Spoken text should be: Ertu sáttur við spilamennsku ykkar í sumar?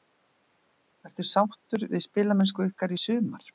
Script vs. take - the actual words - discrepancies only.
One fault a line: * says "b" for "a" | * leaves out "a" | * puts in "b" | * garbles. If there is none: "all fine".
all fine